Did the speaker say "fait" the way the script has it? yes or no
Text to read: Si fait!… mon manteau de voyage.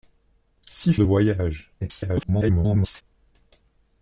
no